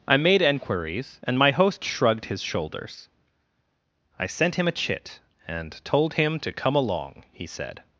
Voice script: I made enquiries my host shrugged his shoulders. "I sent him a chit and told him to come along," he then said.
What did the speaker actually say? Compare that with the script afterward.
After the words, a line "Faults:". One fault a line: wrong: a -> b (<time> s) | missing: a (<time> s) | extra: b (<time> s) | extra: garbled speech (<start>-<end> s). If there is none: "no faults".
I made enquiries and my host shrugged his shoulders. "I sent him a chit and told him to come along," he said.
Faults:
extra: and (1.2 s)
missing: then (7.5 s)